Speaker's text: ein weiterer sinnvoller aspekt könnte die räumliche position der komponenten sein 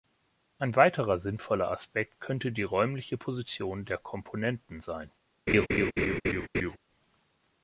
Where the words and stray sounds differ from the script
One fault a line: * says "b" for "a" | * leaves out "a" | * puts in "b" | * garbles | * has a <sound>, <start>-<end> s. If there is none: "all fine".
* has a laugh, 5.5-6.8 s